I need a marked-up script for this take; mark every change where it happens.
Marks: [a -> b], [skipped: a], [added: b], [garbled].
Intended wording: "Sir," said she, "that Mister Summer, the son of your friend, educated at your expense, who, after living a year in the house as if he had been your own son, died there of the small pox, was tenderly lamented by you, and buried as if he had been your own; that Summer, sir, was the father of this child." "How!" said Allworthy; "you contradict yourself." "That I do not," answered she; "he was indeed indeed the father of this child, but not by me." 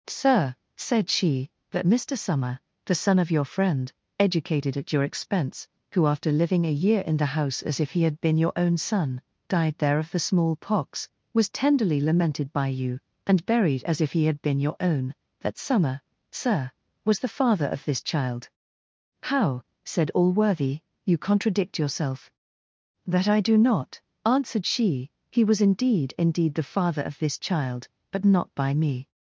"Sir," said she, "that Mister Summer, the son of your friend, educated at your expense, who, after living a year in the house as if he had been your own son, died there of the small pox, was tenderly lamented by you, and buried as if he had been your own; that Summer, sir, was the father of this child." "How!" said Allworthy; "you contradict yourself." "That I do not," answered she; "he was indeed indeed the father of this child, but not by me."